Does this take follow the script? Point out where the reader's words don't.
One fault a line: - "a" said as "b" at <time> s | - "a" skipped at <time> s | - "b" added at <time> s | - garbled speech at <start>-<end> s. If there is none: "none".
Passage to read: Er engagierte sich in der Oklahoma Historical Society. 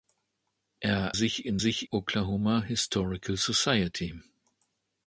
- "engagierte" skipped at 1.1 s
- "der" said as "sich" at 1.5 s